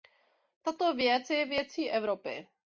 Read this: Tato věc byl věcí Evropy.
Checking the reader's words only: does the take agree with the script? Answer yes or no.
no